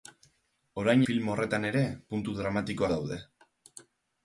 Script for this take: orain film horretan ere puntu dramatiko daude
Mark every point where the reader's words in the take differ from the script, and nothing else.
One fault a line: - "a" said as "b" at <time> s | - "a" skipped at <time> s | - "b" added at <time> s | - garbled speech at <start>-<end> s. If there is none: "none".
none